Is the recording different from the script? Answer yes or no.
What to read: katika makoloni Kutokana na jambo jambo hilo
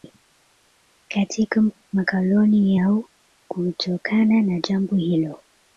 yes